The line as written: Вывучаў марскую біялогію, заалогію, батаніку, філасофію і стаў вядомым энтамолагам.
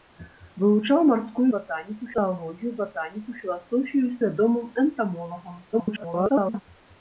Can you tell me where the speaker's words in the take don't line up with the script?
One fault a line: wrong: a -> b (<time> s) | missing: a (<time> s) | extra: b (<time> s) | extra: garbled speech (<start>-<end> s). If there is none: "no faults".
wrong: біялогію -> батаніку (1.5 s)
missing: стаў (4.2 s)
extra: garbled speech (5.7-6.6 s)